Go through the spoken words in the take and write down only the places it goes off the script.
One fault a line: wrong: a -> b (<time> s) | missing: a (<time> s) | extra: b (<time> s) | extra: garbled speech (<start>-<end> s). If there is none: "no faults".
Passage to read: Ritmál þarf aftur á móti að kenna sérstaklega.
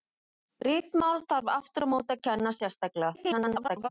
extra: garbled speech (3.1-3.9 s)